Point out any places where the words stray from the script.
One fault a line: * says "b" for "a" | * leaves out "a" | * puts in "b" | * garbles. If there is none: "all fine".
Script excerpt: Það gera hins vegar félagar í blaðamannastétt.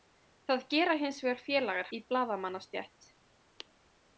all fine